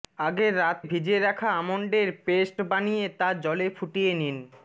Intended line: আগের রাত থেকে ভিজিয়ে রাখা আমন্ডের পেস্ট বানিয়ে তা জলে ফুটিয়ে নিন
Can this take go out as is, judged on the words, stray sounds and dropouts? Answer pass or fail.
fail